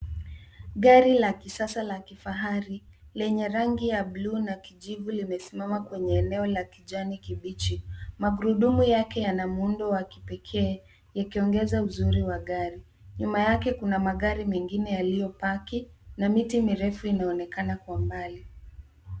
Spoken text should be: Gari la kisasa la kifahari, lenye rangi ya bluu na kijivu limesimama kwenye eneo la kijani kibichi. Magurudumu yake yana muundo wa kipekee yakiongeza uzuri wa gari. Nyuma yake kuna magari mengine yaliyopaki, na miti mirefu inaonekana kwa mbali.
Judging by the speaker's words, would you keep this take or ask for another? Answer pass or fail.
pass